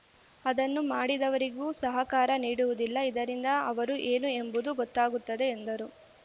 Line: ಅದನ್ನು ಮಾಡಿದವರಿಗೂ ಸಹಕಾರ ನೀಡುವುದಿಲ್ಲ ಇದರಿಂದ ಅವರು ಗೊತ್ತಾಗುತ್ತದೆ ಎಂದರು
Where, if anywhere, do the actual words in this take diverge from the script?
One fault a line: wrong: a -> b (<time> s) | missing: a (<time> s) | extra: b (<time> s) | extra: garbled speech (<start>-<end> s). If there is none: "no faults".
extra: ಏನು ಎಂಬುದು (4.1 s)